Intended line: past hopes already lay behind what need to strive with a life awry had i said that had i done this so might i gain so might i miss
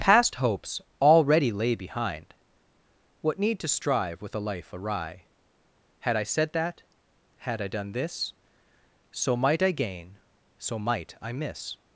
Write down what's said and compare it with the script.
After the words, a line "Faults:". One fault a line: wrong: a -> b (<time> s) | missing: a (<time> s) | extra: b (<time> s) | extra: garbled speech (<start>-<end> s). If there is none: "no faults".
past hopes already lay behind what need to strive with a life awry had i said that had i done this so might i gain so might i miss
Faults:
no faults